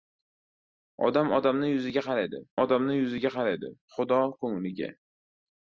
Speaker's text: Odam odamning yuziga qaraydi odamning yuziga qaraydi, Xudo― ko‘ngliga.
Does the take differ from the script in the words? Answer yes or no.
no